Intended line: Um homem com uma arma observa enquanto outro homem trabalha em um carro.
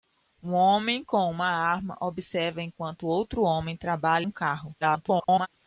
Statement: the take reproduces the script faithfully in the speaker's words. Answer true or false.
false